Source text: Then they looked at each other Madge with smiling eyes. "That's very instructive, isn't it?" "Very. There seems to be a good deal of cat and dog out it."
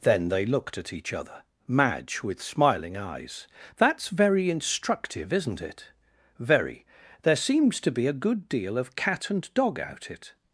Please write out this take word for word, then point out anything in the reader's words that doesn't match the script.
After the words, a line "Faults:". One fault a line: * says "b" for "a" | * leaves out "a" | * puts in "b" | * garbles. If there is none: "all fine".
Then they looked at each other Madge with smiling eyes. "That's very instructive, isn't it?" "Very. There seems to be a good deal of cat and dog out it."
Faults:
all fine